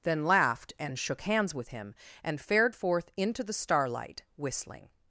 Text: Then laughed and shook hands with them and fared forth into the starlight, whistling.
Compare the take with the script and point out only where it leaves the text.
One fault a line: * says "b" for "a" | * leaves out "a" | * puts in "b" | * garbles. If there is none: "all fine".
* says "him" for "them"